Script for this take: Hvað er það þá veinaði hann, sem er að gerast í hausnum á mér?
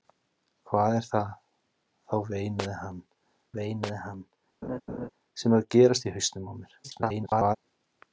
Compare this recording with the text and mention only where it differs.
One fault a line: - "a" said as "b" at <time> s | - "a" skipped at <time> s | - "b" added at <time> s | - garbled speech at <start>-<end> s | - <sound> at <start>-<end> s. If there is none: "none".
- "veinaði hann" added at 3.6 s
- laugh at 4.6-5.1 s
- garbled speech at 6.8-7.6 s